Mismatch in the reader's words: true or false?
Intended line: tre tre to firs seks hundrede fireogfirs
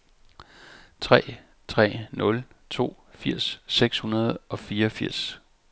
true